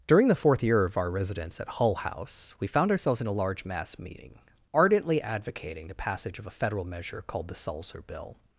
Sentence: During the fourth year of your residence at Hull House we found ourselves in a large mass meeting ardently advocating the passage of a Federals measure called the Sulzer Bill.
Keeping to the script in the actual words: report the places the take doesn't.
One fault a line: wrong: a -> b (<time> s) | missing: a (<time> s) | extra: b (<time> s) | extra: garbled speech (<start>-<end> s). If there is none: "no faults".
wrong: your -> our (1.0 s)
wrong: Federals -> Federal (6.5 s)